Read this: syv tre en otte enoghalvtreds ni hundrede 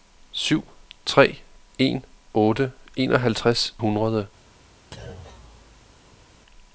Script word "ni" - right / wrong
wrong